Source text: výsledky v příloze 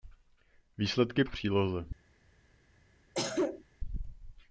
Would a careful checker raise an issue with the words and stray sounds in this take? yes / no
yes